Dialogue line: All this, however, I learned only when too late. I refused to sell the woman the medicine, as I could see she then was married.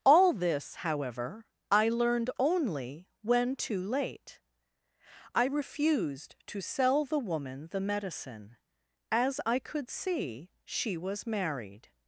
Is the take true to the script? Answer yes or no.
no